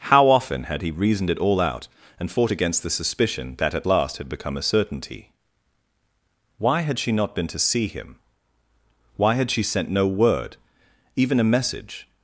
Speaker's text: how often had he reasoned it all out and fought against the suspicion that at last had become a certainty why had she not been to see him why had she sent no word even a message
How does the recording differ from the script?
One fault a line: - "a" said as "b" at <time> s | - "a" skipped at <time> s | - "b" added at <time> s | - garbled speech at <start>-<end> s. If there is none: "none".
none